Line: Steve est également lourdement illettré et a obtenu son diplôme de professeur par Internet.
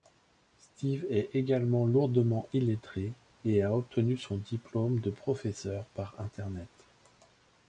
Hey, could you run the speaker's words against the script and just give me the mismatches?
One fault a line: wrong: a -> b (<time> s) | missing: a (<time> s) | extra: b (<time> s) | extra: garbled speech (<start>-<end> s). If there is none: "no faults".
no faults